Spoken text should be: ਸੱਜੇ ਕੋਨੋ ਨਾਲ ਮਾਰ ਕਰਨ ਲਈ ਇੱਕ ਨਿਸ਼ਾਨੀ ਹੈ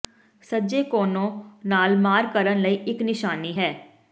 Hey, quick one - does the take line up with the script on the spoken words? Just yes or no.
yes